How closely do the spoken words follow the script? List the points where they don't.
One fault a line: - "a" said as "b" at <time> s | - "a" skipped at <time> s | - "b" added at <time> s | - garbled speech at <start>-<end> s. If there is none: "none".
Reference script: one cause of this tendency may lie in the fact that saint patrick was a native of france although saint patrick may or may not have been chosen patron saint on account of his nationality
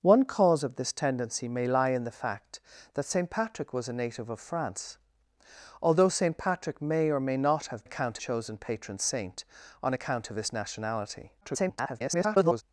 - "been" said as "account" at 7.8 s
- garbled speech at 11.4-12.6 s